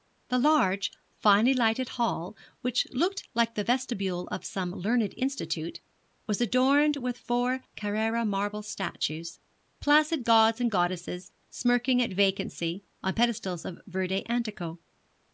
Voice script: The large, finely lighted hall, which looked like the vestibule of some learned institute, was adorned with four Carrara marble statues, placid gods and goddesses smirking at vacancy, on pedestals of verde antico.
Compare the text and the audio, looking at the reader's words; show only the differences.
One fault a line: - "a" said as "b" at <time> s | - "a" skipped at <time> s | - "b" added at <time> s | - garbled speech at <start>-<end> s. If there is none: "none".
none